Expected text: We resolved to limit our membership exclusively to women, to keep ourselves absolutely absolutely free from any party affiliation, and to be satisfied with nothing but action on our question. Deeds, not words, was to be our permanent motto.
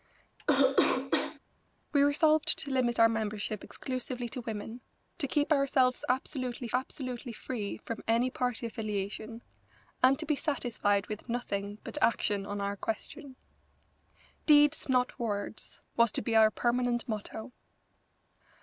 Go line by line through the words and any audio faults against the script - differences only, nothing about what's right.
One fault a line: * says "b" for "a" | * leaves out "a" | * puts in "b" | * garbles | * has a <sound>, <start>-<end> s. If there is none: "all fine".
* has a cough, 0.4-1.4 s